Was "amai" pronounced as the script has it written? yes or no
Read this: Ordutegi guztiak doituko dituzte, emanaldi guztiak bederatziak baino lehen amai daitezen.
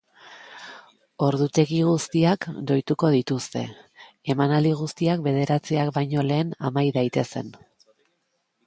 yes